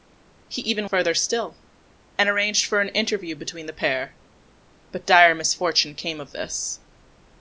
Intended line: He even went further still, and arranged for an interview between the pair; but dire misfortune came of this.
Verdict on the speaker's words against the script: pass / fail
fail